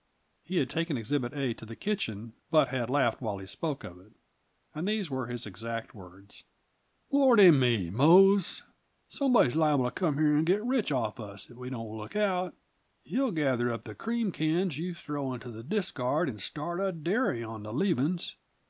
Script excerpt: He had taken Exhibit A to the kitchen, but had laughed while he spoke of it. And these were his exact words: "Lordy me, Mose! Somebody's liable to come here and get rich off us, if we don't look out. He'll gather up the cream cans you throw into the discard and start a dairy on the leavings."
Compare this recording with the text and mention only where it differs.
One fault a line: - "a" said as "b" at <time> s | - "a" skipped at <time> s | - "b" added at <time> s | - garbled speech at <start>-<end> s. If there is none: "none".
none